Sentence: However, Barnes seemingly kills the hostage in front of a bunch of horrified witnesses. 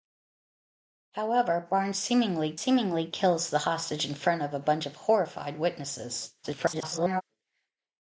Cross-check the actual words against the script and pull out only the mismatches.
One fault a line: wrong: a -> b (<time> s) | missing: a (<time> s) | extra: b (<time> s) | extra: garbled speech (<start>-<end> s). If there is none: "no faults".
extra: seemingly (2.6 s)
extra: garbled speech (6.4-7.2 s)